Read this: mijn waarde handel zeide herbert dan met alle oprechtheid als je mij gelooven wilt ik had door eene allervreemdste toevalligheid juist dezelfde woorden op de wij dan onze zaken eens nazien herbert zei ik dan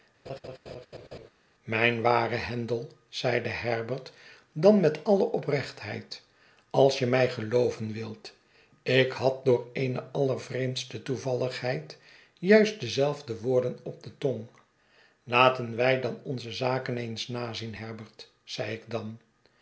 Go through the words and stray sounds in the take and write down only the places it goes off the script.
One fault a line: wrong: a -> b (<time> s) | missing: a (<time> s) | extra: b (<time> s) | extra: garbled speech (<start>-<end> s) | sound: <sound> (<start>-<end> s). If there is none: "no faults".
sound: laugh (0.3-1.3 s)
extra: tong laten (14.2 s)